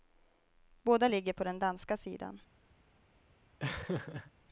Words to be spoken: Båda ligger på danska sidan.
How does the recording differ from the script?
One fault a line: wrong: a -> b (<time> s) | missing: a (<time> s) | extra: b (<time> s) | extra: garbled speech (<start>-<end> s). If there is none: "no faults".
extra: den (1.4 s)